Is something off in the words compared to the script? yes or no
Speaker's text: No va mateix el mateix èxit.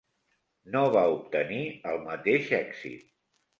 yes